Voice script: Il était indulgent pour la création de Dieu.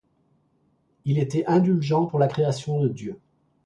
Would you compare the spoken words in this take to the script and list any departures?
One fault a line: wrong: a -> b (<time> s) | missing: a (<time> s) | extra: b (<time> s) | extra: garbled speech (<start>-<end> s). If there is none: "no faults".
no faults